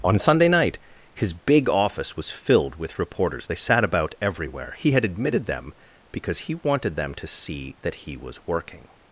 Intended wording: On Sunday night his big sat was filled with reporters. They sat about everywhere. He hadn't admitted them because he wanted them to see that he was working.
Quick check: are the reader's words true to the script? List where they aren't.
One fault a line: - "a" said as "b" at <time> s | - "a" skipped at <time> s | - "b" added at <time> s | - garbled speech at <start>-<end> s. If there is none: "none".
- "sat" said as "office" at 1.7 s
- "hadn't" said as "had" at 4.9 s